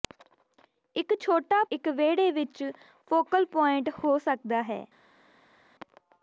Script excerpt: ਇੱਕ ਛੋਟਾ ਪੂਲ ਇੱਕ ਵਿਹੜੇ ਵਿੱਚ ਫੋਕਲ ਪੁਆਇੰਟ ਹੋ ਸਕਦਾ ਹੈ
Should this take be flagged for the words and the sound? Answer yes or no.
yes